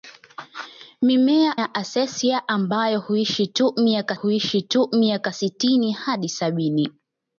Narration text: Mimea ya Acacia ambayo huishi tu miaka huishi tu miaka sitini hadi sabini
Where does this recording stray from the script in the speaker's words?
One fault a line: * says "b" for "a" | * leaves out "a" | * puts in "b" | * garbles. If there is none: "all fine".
all fine